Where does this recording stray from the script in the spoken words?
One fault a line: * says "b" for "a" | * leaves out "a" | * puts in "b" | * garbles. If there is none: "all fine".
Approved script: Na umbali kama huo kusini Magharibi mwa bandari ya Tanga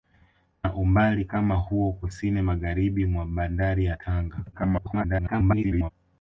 * garbles